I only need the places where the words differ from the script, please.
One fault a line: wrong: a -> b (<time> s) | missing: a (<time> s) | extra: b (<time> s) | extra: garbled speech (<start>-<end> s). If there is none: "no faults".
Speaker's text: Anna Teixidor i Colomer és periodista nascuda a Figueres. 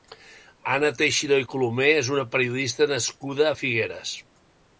extra: una (2.2 s)